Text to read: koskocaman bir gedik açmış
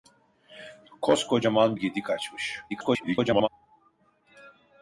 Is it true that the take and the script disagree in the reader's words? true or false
true